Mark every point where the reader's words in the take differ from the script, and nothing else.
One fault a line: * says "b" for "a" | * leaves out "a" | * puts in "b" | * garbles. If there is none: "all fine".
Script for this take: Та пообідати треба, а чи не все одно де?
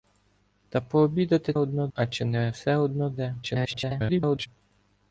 * says "одно" for "треба"
* garbles